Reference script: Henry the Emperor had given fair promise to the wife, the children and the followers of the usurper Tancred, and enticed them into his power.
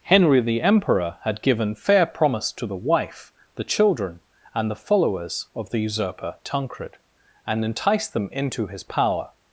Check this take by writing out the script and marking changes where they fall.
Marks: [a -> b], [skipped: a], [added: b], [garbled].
Henry the Emperor had given fair promise to the wife, the children and the followers of the usurper Tancred, and enticed them into his power.